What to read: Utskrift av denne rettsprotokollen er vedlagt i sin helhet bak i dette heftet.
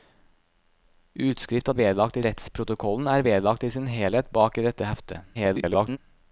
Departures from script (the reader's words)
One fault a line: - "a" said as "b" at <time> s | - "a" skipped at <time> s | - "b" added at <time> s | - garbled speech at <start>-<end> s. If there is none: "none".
- "denne" said as "vedlagt" at 1.8 s
- garbled speech at 5.3-6.0 s